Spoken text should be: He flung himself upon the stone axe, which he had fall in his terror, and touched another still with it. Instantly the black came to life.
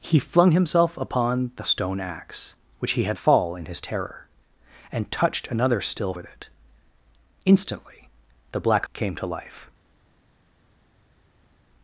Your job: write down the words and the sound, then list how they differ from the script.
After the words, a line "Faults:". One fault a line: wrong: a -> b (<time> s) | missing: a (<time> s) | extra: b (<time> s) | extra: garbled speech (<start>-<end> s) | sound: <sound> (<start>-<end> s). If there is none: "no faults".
He flung himself upon the stone axe, which he had fall in his terror, and touched another still with it. Instantly the black came to life.
Faults:
no faults